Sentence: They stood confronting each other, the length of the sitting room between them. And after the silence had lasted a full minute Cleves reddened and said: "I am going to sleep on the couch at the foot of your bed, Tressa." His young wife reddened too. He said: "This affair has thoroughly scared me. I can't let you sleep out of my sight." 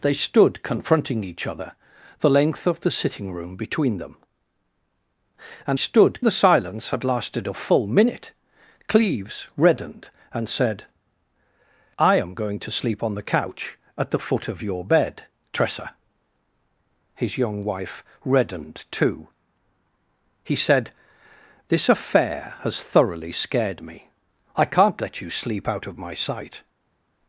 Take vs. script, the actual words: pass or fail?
fail